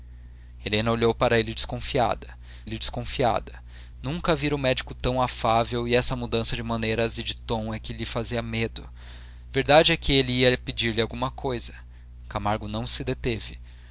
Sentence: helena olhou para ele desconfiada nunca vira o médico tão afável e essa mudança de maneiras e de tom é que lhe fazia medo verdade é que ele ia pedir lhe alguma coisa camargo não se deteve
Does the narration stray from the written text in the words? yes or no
yes